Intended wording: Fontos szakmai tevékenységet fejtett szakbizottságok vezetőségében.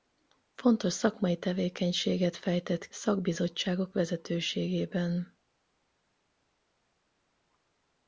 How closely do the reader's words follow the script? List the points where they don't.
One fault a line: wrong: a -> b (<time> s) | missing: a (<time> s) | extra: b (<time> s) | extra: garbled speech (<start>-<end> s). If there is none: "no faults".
no faults